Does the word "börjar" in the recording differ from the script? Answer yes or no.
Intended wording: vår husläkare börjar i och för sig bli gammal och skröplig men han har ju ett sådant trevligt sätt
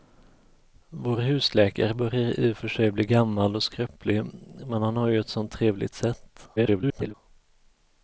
no